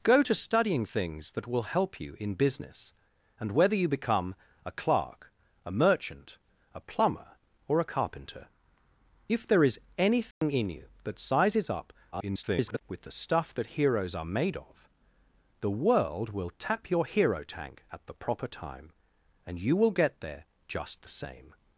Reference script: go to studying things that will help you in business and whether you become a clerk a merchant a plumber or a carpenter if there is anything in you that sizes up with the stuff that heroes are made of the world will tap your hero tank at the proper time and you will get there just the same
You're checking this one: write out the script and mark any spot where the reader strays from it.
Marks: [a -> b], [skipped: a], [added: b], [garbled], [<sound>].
go to studying things that will help you in business and whether you become a clerk a merchant a plumber or a carpenter if there is anything [dropout] in you that sizes up [garbled] with the stuff that heroes are made of the world will tap your hero tank at the proper time and you will get there just the same